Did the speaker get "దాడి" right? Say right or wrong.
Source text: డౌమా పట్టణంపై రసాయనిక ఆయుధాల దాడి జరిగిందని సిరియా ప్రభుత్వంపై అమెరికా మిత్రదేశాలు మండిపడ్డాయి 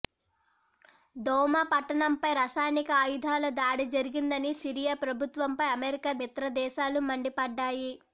right